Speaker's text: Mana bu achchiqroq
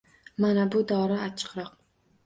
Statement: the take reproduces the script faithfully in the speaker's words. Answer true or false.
false